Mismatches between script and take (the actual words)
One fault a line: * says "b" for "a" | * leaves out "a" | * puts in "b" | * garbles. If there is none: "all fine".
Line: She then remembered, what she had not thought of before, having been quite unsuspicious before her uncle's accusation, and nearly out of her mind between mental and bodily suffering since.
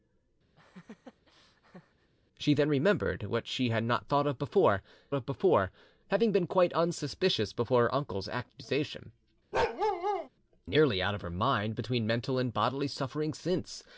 * puts in "of before"
* leaves out "and"